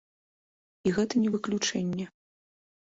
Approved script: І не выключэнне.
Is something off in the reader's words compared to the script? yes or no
yes